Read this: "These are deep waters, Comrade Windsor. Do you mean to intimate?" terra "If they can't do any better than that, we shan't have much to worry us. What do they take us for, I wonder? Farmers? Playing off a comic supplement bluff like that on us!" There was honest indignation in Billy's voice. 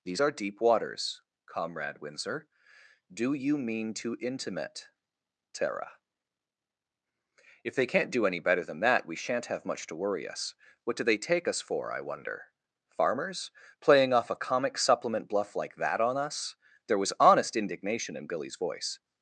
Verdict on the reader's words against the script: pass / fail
pass